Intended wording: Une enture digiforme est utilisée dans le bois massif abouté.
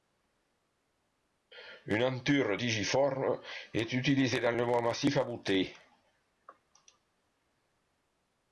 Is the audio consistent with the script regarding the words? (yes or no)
yes